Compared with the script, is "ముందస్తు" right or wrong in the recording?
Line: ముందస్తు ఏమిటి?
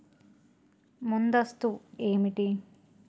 right